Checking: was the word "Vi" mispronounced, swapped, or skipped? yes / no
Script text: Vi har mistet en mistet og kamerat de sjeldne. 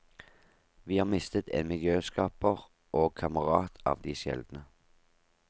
no